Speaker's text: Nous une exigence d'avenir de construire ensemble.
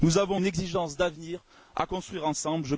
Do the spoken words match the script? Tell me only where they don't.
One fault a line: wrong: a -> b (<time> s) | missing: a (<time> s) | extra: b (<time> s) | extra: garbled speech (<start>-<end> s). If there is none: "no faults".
extra: avons (0.2 s)
wrong: de -> à (1.7 s)